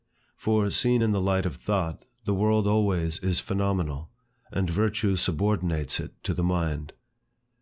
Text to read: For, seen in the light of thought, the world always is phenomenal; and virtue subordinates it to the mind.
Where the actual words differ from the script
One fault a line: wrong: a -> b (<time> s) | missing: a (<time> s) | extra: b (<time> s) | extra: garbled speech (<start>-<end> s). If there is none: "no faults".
no faults